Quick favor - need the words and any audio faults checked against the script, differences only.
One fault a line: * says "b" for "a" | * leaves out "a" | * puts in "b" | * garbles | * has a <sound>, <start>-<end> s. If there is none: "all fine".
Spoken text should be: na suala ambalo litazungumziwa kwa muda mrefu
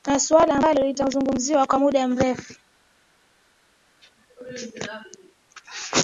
all fine